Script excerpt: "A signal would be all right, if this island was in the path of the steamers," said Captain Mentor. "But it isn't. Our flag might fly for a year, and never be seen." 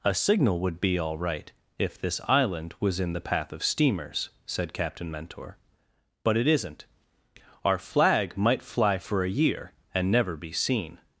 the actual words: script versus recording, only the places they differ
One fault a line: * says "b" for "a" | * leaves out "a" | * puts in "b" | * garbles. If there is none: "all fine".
* leaves out "the"